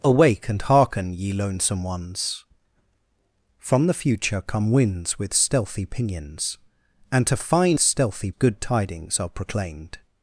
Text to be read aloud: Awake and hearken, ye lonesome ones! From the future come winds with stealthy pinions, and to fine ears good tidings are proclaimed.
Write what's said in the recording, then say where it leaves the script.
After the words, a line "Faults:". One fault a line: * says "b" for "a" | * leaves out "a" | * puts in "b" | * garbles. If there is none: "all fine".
Awake and hearken, ye lonesome ones! From the future come winds with stealthy pinions, and to fine stealthy good tidings are proclaimed.
Faults:
* says "stealthy" for "ears"